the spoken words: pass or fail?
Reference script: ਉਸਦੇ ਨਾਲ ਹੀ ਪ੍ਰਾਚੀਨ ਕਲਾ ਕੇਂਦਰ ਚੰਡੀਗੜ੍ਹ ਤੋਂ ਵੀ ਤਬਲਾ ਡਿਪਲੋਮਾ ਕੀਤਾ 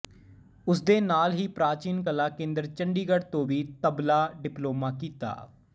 pass